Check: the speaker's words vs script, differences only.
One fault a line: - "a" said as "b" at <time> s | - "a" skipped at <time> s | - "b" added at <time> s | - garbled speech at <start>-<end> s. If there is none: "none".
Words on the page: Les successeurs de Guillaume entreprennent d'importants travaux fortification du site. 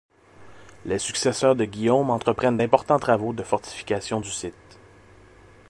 - "de" added at 3.3 s